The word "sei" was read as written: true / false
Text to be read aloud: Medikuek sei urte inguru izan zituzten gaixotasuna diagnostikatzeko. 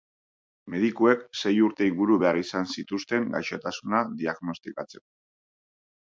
true